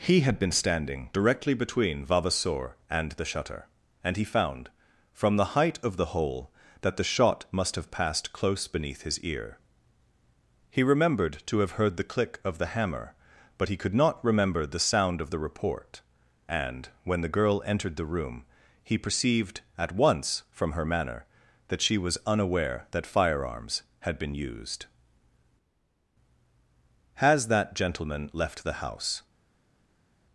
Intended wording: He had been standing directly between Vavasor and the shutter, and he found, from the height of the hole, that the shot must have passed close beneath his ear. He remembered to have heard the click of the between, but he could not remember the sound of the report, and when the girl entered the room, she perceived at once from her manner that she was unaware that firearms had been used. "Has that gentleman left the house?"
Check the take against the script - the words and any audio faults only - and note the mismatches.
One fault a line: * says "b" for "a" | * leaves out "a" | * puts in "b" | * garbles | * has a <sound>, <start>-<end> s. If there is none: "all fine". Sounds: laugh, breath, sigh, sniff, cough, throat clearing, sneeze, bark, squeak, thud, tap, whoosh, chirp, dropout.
* says "hammer" for "between"
* says "he" for "she"